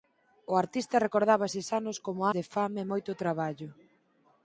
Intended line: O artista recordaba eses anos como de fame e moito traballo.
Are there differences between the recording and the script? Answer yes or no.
no